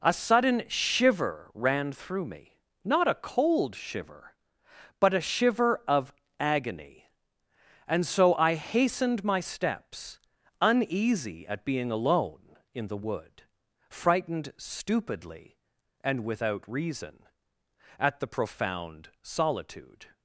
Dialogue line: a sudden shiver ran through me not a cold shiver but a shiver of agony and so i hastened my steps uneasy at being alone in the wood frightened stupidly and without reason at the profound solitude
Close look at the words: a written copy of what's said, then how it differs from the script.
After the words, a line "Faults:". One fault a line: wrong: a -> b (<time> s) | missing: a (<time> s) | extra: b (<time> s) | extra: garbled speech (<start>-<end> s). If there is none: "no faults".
a sudden shiver ran through me not a cold shiver but a shiver of agony and so i hastened my steps uneasy at being alone in the wood frightened stupidly and without reason at the profound solitude
Faults:
no faults